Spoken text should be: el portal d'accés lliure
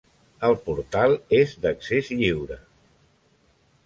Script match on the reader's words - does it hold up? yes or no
no